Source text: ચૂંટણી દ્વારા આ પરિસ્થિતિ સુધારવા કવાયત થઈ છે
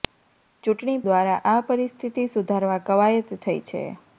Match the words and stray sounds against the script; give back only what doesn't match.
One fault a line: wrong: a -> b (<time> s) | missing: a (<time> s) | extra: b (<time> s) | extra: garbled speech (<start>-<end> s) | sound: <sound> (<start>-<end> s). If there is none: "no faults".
no faults